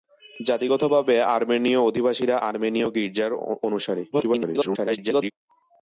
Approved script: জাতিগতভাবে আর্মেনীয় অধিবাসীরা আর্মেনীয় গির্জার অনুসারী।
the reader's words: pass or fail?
fail